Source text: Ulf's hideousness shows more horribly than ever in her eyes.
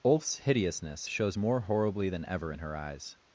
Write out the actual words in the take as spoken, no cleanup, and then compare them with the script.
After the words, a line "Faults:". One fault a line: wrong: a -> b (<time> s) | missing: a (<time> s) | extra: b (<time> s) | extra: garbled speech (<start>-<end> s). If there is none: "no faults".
Ulf's hideousness shows more horribly than ever in her eyes.
Faults:
no faults